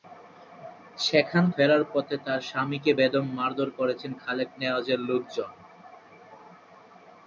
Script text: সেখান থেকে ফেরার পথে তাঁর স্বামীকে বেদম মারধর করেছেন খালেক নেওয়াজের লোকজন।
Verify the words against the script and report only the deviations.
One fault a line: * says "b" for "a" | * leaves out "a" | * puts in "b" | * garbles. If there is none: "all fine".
* leaves out "থেকে"